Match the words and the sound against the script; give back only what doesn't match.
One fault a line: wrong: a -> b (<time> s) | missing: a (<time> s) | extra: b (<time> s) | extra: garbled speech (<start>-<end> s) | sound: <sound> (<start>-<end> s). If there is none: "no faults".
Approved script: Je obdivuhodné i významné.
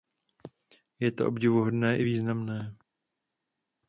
extra: to (1.1 s)